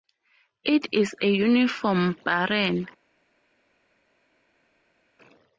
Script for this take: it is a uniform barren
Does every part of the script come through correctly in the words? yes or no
yes